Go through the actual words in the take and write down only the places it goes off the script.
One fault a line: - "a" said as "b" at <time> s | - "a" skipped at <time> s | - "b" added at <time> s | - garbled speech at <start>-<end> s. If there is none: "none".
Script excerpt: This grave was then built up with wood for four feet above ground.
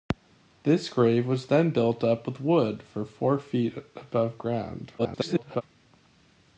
- garbled speech at 5.0-5.6 s